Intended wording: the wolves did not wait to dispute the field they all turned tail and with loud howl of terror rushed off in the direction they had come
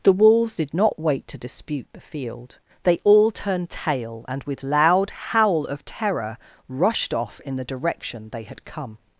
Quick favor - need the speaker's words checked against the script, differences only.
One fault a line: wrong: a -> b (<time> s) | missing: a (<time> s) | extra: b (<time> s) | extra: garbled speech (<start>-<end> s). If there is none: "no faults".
no faults